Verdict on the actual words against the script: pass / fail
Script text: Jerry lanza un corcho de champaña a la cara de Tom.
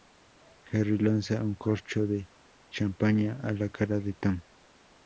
pass